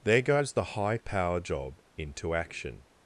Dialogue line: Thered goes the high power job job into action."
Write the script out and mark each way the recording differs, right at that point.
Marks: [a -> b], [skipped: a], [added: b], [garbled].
[Thered -> There] goes the high power job [skipped: job] into action."